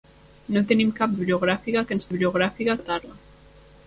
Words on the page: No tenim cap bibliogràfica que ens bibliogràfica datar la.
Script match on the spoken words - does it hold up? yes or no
yes